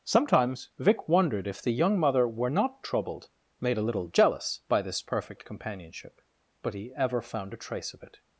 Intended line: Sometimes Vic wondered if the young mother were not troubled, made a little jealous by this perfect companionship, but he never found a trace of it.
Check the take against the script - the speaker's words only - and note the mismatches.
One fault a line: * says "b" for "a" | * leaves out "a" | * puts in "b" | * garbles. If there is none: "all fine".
* says "ever" for "never"